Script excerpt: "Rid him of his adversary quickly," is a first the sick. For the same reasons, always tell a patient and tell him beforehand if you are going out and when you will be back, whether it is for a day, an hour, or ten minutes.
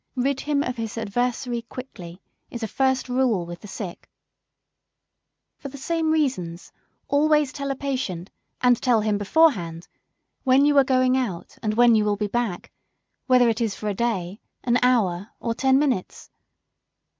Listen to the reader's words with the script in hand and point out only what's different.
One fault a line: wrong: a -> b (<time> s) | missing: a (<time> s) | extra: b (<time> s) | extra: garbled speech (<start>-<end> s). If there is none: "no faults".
extra: rule with (3.1 s)
wrong: if -> when (10.4 s)